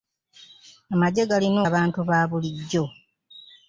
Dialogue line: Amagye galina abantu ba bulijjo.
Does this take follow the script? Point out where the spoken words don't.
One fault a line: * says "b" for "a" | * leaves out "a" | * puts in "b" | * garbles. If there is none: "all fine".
all fine